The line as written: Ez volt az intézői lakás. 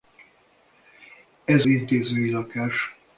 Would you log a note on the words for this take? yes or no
yes